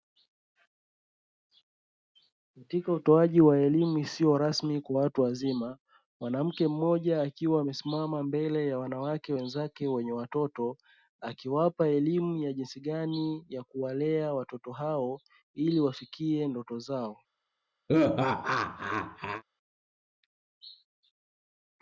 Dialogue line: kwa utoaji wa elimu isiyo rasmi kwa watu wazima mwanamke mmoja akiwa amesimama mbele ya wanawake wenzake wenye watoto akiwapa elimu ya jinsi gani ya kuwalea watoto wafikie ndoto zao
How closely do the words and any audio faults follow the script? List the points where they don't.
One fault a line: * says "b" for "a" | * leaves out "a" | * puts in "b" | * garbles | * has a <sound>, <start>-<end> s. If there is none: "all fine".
* says "katika" for "kwa"
* puts in "hao ili"
* has a laugh, 17.9-19.4 s